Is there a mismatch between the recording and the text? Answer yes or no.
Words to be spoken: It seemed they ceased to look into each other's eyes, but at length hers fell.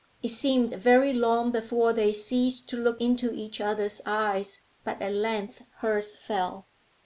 yes